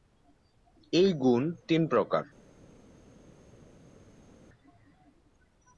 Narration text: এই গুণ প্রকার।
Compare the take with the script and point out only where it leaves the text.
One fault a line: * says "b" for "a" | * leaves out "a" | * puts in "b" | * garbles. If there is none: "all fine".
* puts in "তিন"